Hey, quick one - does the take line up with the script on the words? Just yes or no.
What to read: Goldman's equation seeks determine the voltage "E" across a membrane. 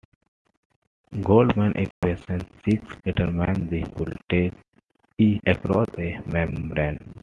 yes